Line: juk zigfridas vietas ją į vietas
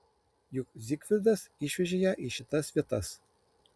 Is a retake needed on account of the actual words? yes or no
yes